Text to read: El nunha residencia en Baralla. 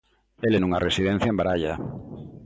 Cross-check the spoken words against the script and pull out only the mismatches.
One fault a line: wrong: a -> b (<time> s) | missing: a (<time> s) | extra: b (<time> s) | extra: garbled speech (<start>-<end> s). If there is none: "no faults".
no faults